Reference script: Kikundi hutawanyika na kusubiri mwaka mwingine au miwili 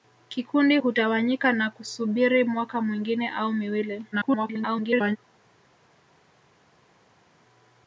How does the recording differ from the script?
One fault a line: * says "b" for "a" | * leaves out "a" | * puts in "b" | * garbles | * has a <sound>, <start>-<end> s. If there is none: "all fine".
* garbles